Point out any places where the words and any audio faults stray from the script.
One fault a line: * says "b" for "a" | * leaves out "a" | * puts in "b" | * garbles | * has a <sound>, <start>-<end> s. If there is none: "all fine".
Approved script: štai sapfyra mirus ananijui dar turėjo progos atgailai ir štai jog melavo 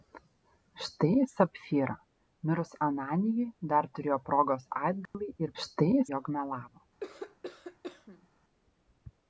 * has a dropout, 5.1-5.1 s
* has a cough, 7.0-8.3 s